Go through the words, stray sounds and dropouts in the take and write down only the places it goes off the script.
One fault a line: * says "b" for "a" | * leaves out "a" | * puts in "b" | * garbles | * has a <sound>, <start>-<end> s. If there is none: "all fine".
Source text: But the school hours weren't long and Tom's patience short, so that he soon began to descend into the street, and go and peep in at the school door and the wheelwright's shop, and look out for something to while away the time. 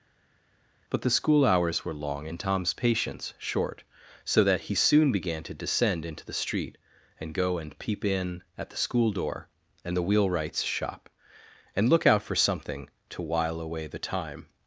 * says "were" for "weren't"